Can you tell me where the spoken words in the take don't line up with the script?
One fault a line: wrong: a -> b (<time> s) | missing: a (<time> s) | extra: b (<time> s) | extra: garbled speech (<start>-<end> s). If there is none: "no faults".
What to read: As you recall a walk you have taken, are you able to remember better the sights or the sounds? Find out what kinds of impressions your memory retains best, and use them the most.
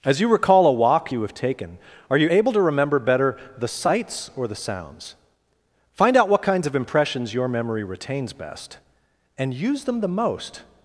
no faults